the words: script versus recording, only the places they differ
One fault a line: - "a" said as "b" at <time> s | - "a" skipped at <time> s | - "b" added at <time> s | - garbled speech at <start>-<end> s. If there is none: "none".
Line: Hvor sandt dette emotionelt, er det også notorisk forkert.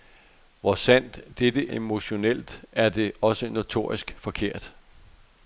none